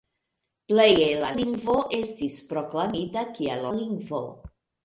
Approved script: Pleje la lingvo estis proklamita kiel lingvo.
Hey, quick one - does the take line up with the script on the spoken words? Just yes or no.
yes